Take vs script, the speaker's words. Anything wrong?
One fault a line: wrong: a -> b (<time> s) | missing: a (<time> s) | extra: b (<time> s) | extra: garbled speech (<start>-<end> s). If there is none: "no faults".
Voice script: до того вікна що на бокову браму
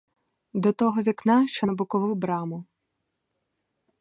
no faults